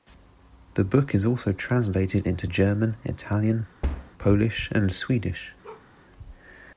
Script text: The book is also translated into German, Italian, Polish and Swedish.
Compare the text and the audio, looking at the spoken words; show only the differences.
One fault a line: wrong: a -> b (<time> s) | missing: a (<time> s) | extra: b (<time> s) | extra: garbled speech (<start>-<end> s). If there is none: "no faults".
no faults